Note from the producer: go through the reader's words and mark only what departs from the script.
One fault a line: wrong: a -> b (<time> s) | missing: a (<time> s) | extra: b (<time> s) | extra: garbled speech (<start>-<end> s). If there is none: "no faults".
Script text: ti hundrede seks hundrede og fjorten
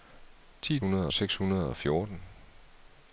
no faults